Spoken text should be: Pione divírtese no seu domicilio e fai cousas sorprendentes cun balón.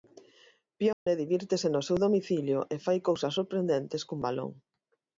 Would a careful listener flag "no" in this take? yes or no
no